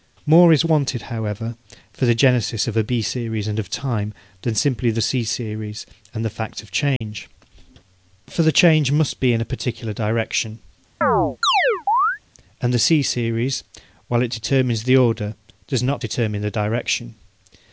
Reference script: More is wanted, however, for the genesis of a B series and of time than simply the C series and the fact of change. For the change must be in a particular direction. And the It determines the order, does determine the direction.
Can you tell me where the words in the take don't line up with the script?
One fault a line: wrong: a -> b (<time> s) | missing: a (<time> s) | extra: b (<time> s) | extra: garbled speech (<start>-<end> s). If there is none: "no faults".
extra: C series while (12.8 s)
extra: not (15.8 s)